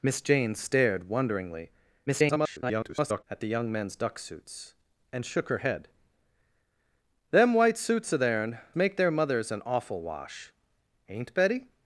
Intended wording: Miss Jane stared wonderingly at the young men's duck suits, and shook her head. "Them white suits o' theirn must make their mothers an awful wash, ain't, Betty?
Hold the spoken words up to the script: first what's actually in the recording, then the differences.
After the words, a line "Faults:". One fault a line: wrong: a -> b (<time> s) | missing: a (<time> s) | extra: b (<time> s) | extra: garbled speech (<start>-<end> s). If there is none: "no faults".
Miss Jane stared wonderingly [garbled] at the young men's duck suits, and shook her head. "Them white suits o' theirn make their mothers an awful wash, ain't, Betty?
Faults:
extra: garbled speech (2.1-3.2 s)
missing: must (8.6 s)